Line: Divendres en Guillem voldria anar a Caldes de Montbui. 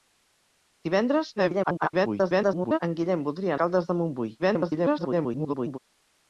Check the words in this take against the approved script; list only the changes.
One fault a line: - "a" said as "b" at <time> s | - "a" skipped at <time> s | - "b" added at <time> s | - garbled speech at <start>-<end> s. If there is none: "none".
- garbled speech at 1.4-2.8 s
- "anar a" skipped at 3.6 s
- garbled speech at 4.4-5.8 s